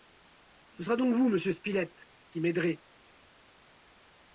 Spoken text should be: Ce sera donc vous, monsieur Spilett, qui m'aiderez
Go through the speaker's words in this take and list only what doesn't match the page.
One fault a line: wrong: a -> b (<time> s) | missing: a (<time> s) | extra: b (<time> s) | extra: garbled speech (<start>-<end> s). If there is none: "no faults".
no faults